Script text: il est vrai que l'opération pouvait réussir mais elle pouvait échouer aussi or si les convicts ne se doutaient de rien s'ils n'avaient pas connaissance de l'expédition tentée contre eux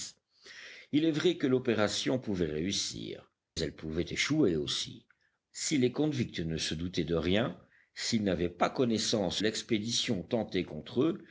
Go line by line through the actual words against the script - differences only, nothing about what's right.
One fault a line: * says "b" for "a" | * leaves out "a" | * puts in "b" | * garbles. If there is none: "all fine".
* leaves out "mais"
* leaves out "or"
* leaves out "de"